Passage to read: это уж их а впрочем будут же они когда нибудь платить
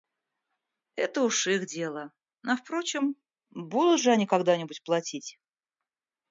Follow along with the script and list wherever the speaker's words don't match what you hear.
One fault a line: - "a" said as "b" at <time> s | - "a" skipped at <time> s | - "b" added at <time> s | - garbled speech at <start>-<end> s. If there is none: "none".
- "дело" added at 1.7 s